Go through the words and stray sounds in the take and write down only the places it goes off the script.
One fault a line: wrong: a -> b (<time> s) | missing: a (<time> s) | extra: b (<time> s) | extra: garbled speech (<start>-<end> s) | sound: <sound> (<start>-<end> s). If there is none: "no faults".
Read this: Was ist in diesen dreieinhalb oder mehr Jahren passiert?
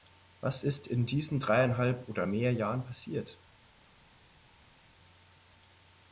no faults